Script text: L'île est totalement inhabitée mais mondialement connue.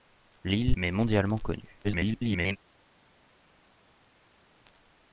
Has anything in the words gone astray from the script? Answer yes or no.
yes